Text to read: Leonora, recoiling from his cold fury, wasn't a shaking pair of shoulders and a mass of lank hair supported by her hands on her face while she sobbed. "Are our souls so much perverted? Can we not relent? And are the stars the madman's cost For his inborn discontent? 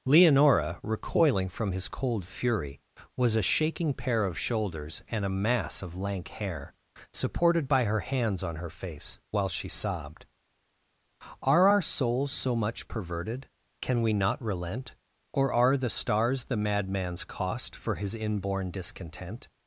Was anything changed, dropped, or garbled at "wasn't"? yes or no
yes